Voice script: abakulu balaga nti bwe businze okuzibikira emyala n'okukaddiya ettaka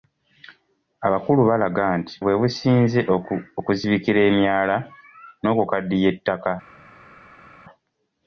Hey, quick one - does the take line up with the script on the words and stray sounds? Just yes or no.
yes